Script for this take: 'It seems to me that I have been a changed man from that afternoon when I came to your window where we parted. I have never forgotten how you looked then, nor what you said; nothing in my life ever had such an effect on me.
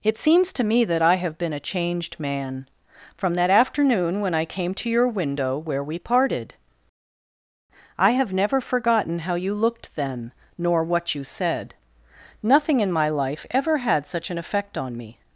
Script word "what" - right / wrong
right